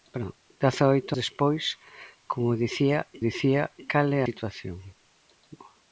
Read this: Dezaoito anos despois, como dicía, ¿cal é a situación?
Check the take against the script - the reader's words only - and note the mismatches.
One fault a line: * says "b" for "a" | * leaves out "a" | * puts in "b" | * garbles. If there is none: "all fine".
* leaves out "anos"
* puts in "dicía"
* leaves out "a"